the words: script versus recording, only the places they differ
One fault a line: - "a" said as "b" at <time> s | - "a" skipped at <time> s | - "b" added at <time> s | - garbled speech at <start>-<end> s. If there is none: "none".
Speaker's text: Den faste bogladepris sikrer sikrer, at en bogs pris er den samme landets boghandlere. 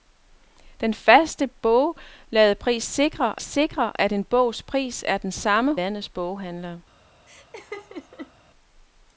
none